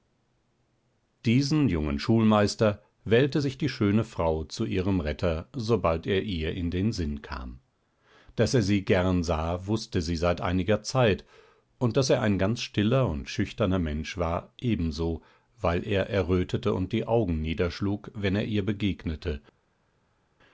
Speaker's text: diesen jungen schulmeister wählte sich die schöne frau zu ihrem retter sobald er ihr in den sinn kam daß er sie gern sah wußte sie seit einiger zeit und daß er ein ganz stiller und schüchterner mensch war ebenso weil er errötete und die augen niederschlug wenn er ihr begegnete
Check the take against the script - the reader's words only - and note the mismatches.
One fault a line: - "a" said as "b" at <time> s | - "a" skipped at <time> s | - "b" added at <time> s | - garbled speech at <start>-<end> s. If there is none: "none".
none